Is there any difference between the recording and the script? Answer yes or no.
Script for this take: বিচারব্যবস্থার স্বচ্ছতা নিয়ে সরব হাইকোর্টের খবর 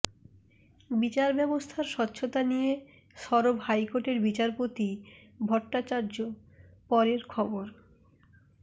yes